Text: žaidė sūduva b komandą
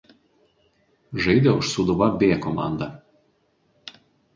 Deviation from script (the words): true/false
true